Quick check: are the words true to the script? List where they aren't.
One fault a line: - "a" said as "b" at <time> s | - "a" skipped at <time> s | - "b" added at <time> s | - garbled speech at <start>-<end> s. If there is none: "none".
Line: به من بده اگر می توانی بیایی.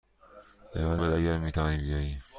none